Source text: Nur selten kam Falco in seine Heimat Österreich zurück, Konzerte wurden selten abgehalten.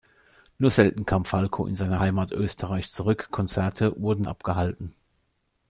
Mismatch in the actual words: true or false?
true